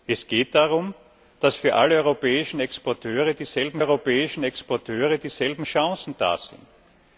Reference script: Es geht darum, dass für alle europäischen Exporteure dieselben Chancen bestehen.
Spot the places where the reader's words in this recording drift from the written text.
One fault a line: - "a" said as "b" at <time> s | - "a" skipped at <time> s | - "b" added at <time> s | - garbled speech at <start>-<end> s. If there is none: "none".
- "europäischen Exporteure dieselben" added at 3.8 s